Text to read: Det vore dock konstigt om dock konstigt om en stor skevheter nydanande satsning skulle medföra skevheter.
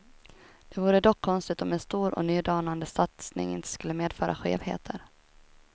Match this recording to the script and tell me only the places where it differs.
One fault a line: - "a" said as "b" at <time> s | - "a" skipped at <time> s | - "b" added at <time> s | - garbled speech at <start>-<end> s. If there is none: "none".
- "dock konstigt om" skipped at 1.7 s
- "skevheter" said as "och" at 2.1 s
- "inte" added at 3.5 s